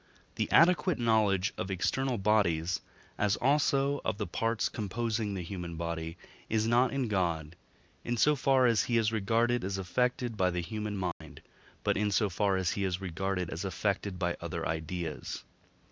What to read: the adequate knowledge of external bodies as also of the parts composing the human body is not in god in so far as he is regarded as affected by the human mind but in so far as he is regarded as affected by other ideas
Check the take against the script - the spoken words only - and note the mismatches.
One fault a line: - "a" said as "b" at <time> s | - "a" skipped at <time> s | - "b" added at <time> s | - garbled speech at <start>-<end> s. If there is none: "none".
none